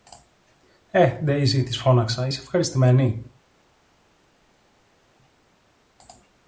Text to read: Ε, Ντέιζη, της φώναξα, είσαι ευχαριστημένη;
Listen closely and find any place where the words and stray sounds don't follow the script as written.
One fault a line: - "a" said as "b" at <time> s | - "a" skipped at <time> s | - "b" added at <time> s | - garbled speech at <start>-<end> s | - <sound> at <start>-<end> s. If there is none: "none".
none